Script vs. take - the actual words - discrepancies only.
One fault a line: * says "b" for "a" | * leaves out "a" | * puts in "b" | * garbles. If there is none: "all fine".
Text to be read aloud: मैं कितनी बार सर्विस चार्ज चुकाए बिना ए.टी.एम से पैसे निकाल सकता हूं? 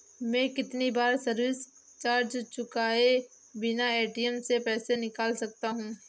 all fine